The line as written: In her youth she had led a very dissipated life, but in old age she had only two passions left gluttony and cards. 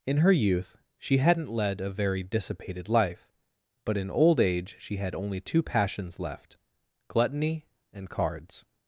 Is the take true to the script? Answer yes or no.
no